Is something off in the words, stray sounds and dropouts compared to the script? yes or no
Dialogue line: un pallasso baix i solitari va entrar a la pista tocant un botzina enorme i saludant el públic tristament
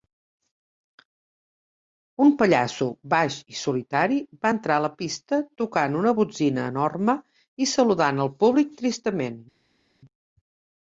yes